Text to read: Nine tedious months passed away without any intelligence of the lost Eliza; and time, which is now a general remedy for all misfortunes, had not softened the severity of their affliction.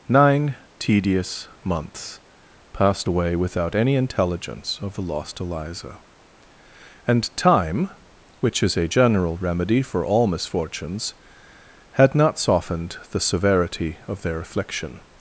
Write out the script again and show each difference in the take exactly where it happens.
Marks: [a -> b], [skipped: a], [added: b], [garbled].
Nine tedious months passed away without any intelligence of the lost Eliza; and time, which is [skipped: now] a general remedy for all misfortunes, had not softened the severity of their affliction.